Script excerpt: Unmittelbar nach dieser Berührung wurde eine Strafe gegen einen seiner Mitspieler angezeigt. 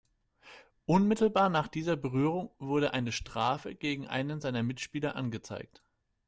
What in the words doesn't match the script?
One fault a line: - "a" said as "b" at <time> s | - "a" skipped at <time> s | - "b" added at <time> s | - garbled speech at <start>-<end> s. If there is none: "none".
none